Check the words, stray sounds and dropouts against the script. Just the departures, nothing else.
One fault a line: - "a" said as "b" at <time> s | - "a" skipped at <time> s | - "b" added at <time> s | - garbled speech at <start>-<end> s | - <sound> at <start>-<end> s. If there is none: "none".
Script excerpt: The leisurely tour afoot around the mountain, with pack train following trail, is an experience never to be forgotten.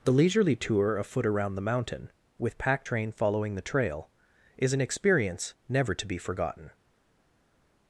- "the" added at 3.6 s